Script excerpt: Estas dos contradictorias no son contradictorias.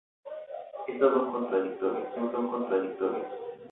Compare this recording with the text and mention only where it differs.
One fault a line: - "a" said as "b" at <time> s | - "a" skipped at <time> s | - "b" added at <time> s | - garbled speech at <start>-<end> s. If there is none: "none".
none